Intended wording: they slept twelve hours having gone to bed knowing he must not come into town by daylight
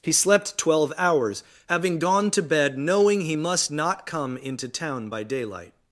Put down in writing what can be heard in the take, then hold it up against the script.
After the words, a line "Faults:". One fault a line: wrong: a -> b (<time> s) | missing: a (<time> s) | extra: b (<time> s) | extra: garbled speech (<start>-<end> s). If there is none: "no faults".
he slept twelve hours having gone to bed knowing he must not come into town by daylight
Faults:
wrong: they -> he (0.0 s)